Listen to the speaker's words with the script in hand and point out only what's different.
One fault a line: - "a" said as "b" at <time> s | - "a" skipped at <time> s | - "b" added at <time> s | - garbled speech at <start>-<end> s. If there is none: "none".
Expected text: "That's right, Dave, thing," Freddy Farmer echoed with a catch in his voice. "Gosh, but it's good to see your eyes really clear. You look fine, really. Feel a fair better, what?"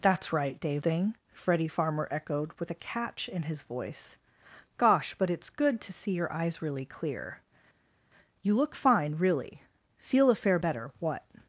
none